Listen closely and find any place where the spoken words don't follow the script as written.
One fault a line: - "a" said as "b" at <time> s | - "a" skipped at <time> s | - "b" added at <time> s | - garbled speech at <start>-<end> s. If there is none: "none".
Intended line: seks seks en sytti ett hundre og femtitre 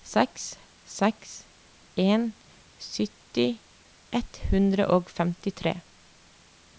none